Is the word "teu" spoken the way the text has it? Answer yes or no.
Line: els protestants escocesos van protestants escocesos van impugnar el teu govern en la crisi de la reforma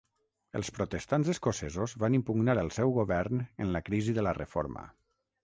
no